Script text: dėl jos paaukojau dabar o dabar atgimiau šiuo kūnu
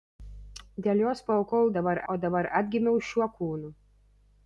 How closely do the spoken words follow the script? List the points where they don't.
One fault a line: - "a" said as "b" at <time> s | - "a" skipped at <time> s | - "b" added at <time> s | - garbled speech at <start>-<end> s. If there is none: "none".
none